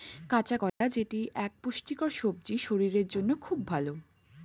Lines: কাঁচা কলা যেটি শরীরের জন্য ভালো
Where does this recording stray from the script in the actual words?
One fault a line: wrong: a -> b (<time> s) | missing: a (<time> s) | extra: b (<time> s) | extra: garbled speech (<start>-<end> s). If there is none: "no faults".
extra: এক পুষ্টিকর সবজি (1.4 s)
extra: খুব (3.4 s)